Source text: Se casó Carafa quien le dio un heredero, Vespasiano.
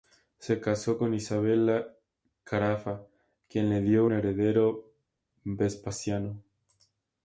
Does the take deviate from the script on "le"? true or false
false